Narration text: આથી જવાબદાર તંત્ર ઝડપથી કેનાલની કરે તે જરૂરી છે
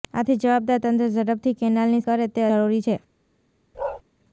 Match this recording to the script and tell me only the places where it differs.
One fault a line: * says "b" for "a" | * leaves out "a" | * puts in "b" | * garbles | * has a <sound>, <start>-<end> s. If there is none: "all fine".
* has a bark, 3.7-4.0 s